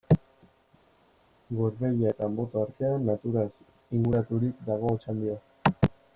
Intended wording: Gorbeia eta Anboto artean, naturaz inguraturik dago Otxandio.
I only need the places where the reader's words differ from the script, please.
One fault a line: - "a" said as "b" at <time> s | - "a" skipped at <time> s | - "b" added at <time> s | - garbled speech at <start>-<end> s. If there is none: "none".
none